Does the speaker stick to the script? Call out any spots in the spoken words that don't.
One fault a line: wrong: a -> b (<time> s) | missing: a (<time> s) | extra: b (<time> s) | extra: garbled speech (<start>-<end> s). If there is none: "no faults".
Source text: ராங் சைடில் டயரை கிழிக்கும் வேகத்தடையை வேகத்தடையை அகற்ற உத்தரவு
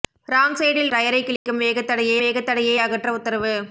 no faults